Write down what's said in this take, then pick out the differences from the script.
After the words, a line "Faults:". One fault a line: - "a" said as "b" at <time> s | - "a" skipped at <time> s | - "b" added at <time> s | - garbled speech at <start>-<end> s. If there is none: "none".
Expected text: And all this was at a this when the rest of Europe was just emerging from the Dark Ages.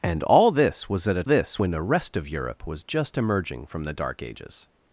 And all this was at a this when the rest of Europe was just emerging from the Dark Ages.
Faults:
none